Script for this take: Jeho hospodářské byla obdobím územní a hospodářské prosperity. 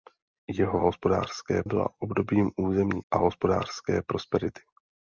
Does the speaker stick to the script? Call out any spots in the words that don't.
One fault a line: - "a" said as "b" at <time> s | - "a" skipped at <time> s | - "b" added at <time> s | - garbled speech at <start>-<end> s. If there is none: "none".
none